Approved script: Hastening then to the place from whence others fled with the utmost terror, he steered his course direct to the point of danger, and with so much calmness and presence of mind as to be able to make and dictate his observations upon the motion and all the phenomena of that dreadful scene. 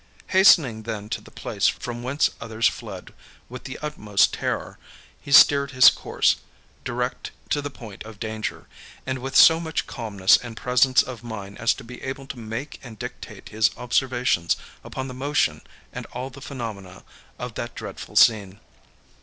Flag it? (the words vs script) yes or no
no